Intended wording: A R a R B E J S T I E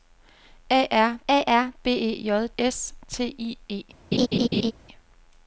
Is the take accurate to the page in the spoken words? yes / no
yes